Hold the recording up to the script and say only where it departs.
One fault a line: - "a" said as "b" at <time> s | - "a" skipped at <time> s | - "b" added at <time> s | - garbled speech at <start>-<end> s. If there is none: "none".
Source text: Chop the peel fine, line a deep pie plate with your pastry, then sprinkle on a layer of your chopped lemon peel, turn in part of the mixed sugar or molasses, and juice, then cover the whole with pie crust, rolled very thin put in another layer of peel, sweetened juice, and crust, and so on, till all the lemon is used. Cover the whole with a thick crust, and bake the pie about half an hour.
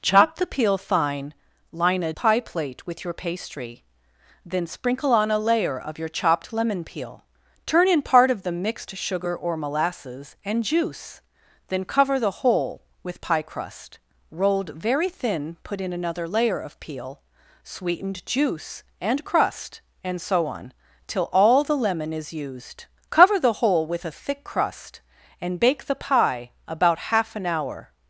- "deep" skipped at 2.1 s